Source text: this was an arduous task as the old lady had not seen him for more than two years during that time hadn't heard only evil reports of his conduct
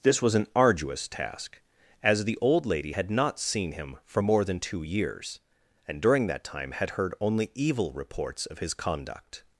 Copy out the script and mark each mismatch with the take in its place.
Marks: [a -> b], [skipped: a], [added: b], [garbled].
this was an arduous task as the old lady had not seen him for more than two years [added: and] during that time [hadn't -> had] heard only evil reports of his conduct